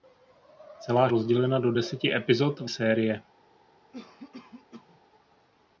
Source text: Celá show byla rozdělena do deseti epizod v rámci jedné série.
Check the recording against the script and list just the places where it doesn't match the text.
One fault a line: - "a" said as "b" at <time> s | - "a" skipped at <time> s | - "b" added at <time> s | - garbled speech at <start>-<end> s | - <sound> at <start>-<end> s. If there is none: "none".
- "show byla" skipped at 1.1 s
- "rámci jedné" skipped at 2.7 s
- cough at 3.9-5.0 s